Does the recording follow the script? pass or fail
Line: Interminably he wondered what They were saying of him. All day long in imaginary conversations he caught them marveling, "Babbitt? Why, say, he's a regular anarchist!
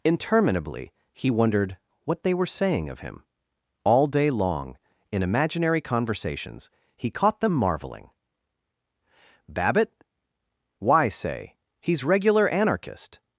fail